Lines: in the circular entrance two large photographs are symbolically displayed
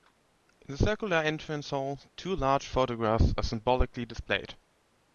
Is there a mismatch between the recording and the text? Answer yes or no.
yes